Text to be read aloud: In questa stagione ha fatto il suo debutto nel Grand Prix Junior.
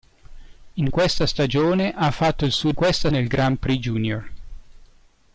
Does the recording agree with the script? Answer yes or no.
no